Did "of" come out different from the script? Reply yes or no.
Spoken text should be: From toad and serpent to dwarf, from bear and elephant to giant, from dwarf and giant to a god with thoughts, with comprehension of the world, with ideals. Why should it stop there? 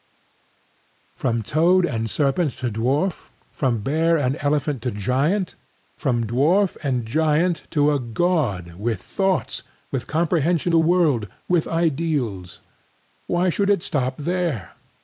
yes